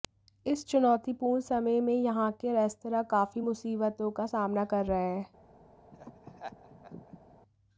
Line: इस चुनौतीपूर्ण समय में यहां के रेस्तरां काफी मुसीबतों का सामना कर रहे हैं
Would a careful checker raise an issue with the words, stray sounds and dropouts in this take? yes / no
yes